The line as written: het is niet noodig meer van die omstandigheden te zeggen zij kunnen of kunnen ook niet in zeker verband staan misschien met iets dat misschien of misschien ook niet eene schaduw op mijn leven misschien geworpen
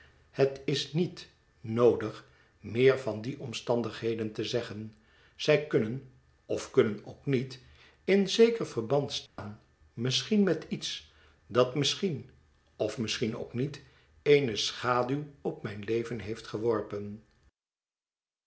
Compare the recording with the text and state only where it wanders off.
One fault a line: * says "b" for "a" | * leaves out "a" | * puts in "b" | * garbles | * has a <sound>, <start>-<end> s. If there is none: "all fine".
* has a dropout, 9.3-9.4 s
* says "heeft" for "misschien"